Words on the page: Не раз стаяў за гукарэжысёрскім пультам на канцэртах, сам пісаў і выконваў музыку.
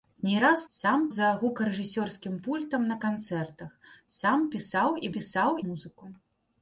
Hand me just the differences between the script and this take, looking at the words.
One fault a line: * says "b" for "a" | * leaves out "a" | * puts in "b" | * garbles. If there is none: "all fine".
* says "сам" for "стаяў"
* says "пісаў" for "выконваў"